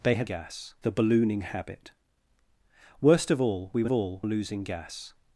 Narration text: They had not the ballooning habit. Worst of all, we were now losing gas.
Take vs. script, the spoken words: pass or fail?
fail